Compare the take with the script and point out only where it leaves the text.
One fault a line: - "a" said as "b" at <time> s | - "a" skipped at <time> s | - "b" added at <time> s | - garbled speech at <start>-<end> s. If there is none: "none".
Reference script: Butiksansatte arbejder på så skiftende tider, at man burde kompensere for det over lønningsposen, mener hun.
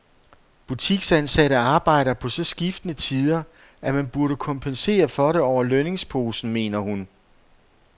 none